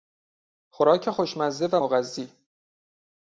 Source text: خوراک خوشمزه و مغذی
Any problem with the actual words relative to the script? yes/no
no